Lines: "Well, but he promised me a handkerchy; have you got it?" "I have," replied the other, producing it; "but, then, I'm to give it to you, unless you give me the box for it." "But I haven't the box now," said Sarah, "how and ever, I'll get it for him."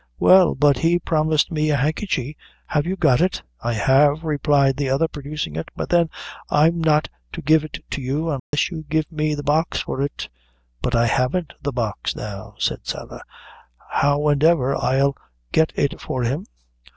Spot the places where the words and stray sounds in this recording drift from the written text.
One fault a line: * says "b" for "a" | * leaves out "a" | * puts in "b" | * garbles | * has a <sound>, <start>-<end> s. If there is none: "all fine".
* puts in "not"
* has a dropout, 8.4-8.5 s